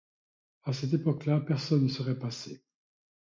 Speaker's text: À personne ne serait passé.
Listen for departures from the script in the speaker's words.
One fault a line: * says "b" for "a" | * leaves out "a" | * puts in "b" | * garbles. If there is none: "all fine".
* puts in "cette époque là"